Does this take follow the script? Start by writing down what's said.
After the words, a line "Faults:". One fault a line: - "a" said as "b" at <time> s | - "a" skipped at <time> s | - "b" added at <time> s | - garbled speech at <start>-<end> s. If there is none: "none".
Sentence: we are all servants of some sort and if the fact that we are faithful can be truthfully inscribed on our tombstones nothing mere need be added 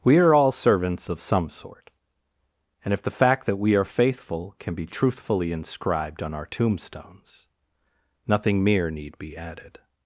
we are all servants of some sort and if the fact that we are faithful can be truthfully inscribed on our tombstones nothing mere need be added
Faults:
none